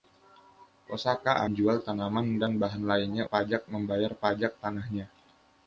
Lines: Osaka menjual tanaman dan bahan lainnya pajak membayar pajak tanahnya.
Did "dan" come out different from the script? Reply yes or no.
no